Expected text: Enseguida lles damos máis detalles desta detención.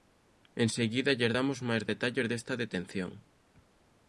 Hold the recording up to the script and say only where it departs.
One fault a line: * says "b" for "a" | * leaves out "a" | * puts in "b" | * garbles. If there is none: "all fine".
all fine